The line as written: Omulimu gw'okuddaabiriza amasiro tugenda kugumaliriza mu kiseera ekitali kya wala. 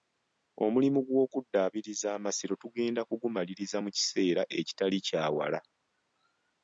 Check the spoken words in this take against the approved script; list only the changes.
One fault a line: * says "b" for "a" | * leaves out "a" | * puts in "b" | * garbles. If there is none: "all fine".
all fine